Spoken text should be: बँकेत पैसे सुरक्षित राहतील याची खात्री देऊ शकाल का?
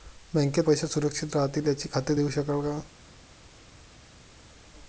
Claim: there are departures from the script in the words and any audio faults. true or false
false